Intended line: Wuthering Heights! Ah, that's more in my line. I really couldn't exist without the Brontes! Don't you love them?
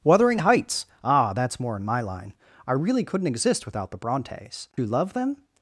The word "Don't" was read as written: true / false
false